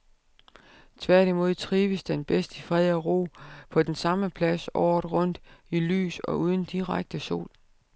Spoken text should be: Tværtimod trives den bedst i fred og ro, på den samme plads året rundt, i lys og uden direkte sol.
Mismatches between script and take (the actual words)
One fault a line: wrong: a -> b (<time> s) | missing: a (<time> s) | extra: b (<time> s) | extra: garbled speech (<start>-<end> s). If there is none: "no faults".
no faults